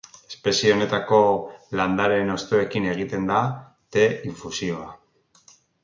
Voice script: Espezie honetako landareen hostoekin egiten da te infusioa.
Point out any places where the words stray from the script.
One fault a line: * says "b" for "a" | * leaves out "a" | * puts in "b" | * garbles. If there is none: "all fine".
all fine